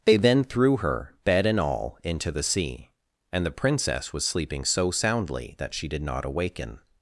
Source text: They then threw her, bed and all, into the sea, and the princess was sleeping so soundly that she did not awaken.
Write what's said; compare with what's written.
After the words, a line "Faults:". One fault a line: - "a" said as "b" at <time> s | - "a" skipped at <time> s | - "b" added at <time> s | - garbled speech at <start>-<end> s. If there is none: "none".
They then threw her, bed and all, into the sea, and the princess was sleeping so soundly that she did not awaken.
Faults:
none